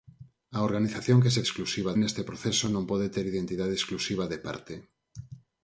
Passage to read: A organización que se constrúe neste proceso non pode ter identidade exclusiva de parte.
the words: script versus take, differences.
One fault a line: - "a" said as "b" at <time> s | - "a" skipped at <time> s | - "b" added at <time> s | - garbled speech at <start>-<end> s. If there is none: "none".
- "constrúe" said as "exclusiva" at 1.5 s